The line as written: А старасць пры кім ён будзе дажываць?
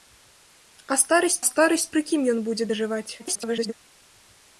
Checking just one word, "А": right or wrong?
right